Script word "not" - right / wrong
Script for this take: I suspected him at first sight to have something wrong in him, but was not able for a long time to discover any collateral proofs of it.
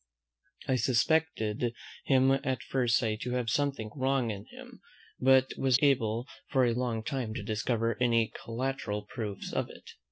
wrong